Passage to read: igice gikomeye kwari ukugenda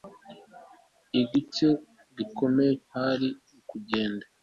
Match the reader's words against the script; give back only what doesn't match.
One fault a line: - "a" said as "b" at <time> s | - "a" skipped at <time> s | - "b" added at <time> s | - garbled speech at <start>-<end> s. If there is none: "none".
none